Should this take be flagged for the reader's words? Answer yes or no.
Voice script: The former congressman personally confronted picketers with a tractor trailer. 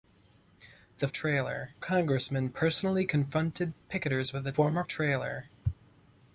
yes